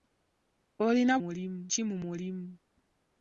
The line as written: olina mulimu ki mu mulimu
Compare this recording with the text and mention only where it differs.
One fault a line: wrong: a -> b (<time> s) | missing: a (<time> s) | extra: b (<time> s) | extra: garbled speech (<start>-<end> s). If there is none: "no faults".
no faults